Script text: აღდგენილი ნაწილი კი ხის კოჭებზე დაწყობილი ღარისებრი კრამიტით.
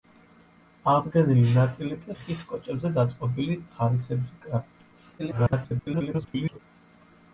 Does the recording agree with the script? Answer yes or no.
no